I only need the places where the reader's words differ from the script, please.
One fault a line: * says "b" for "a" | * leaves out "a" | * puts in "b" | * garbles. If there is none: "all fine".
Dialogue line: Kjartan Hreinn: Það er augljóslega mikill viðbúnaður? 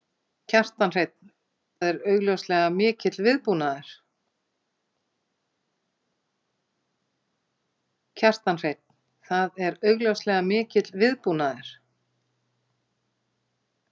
* leaves out "Það"